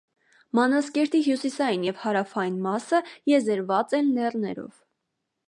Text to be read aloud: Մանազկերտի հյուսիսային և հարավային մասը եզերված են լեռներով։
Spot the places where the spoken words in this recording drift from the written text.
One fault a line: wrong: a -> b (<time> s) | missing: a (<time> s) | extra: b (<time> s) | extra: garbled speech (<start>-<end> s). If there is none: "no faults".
no faults